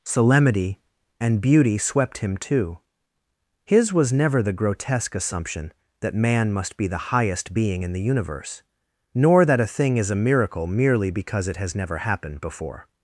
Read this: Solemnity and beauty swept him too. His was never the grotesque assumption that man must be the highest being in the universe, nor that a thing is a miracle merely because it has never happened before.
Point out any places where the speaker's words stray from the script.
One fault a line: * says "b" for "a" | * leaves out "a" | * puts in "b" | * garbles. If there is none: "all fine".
all fine